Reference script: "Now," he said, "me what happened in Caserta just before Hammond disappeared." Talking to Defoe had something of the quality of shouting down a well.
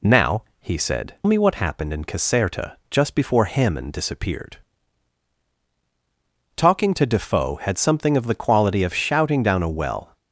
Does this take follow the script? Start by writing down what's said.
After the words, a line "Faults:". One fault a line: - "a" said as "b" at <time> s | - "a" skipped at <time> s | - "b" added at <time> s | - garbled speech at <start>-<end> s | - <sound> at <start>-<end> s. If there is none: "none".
"Now," he said, "me what happened in Caserta just before Hammond disappeared." Talking to Defoe had something of the quality of shouting down a well.
Faults:
none